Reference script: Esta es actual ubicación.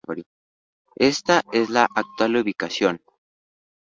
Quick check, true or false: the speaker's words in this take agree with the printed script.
false